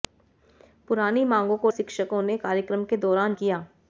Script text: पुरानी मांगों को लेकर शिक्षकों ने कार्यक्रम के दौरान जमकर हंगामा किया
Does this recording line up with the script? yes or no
no